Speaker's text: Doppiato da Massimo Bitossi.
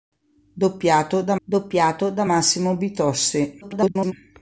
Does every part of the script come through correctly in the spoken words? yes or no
no